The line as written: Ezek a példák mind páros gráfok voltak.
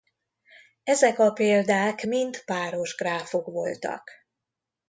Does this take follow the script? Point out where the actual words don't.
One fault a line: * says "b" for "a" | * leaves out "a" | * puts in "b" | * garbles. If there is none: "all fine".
all fine